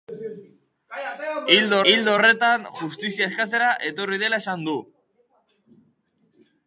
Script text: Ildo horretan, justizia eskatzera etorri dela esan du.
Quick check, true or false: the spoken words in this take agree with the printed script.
false